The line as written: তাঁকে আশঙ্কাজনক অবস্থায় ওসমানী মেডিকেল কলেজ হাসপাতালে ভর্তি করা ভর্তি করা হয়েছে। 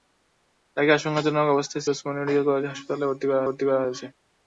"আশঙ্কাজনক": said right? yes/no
yes